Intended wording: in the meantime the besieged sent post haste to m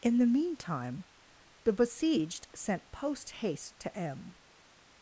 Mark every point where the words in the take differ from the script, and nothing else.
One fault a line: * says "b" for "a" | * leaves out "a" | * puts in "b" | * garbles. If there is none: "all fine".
all fine